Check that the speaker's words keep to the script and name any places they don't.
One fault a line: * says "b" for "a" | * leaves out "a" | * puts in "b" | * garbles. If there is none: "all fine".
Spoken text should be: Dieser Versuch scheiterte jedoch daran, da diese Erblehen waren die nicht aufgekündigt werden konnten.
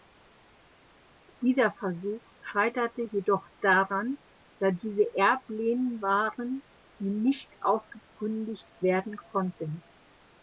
all fine